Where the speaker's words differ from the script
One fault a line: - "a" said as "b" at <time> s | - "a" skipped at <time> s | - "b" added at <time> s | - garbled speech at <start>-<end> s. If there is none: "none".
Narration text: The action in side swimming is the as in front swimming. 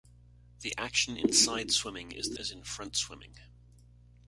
none